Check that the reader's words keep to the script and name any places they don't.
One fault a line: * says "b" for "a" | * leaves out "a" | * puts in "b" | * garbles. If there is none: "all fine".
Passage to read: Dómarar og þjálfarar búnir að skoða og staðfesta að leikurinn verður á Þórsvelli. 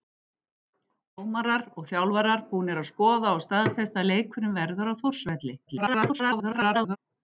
* garbles